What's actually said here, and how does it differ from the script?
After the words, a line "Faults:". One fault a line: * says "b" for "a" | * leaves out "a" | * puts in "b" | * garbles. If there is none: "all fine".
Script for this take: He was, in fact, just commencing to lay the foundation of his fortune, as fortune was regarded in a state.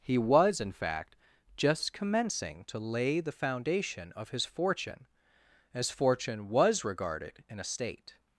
He was, in fact, just commencing to lay the foundation of his fortune, as fortune was regarded in a state.
Faults:
all fine